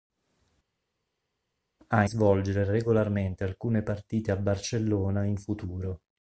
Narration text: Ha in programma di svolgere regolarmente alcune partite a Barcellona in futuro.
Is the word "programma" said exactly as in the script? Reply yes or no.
no